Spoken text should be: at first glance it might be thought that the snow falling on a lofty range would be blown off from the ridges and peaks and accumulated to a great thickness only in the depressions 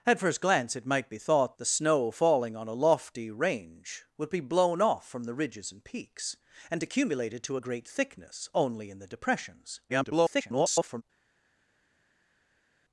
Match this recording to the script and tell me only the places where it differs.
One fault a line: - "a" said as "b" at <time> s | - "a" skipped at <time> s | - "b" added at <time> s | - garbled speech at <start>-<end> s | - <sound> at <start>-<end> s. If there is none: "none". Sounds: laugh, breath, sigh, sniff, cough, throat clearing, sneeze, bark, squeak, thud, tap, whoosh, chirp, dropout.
- "that" skipped at 1.6 s
- garbled speech at 9.9-11.0 s